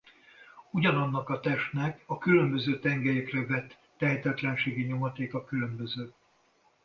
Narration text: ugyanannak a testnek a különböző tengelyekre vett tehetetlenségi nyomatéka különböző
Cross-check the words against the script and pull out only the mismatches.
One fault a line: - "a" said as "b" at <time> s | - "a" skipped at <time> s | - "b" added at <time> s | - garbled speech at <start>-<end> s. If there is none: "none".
none